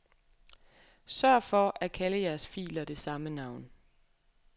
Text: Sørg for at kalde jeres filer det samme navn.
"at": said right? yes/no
yes